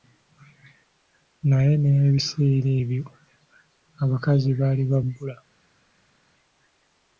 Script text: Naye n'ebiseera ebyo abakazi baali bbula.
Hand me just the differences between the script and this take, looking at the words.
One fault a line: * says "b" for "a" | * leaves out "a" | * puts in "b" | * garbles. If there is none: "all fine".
* puts in "ba"